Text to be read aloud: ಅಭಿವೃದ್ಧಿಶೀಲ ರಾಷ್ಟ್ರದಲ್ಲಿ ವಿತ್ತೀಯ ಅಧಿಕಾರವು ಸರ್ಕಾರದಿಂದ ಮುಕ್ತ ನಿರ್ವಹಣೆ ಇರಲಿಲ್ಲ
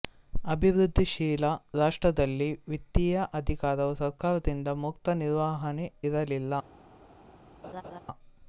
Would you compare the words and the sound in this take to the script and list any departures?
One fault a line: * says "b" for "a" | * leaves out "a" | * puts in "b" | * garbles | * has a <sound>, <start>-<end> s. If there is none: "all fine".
* has a laugh, 7.6-8.0 s